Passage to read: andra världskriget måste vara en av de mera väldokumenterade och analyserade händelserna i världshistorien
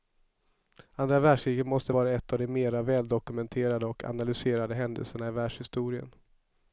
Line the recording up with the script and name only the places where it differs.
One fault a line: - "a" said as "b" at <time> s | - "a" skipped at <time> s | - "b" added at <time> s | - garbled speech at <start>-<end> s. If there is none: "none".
none